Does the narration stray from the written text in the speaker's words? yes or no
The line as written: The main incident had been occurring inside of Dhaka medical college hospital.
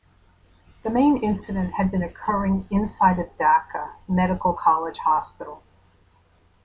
no